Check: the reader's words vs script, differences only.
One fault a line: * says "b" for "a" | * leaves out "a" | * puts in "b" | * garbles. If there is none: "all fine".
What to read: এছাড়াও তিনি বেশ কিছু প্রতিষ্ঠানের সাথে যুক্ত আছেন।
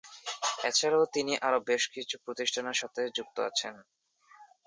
* puts in "আরো"